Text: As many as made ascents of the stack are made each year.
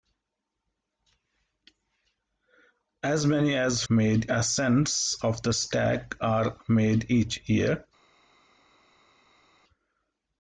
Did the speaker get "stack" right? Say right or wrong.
right